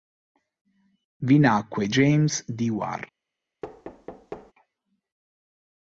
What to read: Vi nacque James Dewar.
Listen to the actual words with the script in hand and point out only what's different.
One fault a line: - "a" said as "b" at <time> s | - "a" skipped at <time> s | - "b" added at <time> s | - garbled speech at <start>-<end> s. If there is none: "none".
none